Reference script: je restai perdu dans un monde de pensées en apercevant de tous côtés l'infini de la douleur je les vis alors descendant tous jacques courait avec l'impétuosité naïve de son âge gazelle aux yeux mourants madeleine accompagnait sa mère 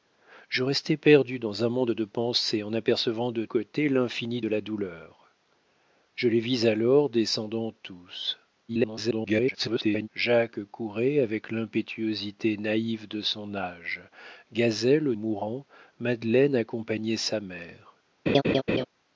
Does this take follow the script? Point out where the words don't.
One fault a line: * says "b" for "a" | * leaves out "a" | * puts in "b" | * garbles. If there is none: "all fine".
* leaves out "tous"
* garbles
* leaves out "yeux"